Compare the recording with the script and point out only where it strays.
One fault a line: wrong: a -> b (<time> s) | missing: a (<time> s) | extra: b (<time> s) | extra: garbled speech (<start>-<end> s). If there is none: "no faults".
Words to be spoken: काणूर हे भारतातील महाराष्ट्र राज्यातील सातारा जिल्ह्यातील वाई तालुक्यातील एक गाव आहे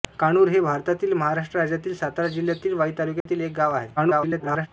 extra: garbled speech (4.0-4.7 s)